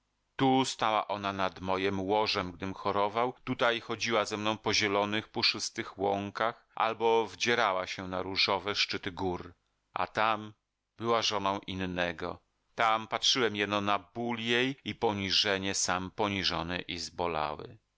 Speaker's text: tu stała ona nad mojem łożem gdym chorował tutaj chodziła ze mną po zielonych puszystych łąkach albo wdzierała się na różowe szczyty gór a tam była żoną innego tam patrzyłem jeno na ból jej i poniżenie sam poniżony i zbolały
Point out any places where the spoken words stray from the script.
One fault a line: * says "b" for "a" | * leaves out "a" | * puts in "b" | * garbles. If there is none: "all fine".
all fine